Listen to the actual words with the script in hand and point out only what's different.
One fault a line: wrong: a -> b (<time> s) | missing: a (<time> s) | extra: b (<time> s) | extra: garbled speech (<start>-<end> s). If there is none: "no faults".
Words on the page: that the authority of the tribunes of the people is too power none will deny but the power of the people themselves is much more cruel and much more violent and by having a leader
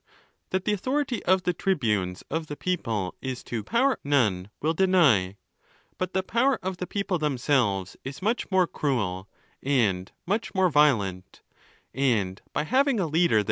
no faults